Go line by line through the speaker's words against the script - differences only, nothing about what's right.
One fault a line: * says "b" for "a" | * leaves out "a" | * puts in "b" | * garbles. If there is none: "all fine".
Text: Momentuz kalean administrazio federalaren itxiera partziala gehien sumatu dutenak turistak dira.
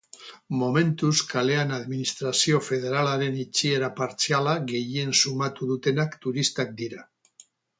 all fine